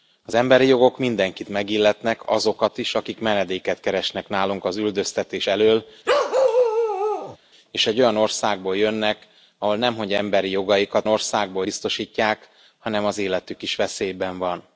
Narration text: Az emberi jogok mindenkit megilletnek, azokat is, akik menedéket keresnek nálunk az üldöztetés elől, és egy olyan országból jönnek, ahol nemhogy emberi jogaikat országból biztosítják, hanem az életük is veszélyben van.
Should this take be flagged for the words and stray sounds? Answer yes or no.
yes